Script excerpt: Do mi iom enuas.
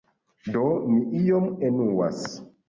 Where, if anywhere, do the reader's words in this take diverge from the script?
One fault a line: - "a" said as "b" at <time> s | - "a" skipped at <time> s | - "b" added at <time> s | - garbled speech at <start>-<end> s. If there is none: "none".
none